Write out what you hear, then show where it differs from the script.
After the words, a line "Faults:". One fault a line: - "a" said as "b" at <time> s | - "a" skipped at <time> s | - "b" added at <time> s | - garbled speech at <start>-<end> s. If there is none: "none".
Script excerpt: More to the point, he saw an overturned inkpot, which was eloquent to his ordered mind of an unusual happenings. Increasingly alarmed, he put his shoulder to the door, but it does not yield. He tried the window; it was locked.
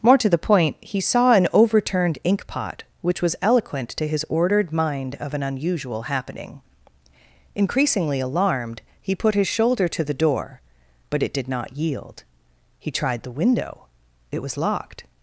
More to the point, he saw an overturned inkpot, which was eloquent to his ordered mind of an unusual happening. Increasingly alarmed, he put his shoulder to the door, but it did not yield. He tried the window; it was locked.
Faults:
- "happenings" said as "happening" at 6.0 s
- "does" said as "did" at 11.3 s